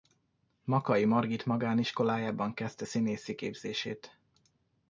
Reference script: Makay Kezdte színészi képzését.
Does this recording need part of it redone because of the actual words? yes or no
yes